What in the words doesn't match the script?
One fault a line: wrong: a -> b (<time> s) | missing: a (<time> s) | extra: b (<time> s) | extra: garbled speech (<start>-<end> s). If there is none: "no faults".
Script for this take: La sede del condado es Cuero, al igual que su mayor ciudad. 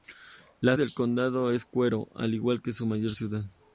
missing: sede (0.8 s)